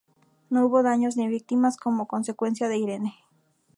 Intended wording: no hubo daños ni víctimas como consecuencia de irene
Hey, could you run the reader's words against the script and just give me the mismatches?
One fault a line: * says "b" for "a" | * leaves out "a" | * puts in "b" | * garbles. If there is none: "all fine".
all fine